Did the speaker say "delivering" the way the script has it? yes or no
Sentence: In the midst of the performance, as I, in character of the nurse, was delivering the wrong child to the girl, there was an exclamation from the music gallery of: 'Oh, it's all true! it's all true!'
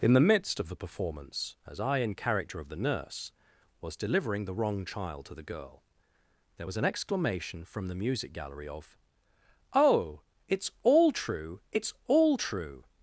yes